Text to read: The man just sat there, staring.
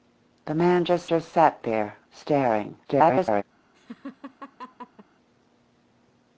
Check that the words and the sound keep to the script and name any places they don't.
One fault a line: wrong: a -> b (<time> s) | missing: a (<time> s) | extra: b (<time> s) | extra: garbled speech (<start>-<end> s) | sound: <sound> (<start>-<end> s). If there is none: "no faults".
extra: just (1.1 s)
extra: garbled speech (2.8-3.4 s)
sound: laugh (3.7-5.1 s)